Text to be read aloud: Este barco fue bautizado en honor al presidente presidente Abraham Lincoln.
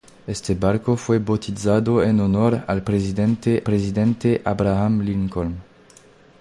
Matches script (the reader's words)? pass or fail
pass